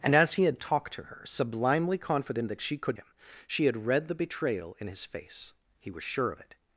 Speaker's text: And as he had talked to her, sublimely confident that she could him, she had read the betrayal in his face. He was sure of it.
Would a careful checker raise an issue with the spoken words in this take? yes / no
no